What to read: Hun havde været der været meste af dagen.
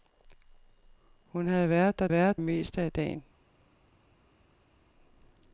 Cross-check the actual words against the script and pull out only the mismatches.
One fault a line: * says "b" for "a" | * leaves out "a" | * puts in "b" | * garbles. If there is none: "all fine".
all fine